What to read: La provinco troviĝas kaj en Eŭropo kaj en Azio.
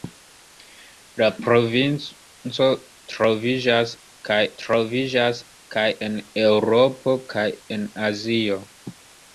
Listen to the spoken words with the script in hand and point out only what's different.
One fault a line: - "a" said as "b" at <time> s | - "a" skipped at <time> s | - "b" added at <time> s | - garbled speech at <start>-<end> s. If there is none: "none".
- "troviĝas kaj" added at 4.6 s